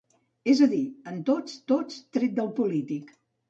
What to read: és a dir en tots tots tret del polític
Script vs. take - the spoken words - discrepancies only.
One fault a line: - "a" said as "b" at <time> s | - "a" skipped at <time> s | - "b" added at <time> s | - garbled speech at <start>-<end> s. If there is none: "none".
none